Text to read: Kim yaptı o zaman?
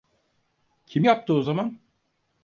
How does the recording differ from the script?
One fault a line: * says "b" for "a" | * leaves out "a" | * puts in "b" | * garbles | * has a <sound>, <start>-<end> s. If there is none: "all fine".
all fine